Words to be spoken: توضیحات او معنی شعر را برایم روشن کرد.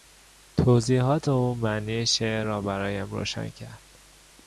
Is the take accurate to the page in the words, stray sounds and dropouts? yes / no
yes